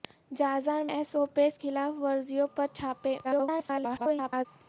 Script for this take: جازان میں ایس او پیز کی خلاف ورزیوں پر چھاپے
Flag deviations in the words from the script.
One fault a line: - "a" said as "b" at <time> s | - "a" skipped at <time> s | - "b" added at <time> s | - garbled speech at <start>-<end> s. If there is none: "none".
- "میں" skipped at 0.9 s
- "کی" skipped at 1.6 s
- garbled speech at 3.2-4.5 s